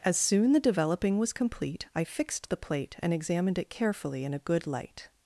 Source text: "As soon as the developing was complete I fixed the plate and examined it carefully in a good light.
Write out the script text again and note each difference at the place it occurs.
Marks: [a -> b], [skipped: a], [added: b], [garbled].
"As soon [skipped: as] the developing was complete I fixed the plate and examined it carefully in a good light.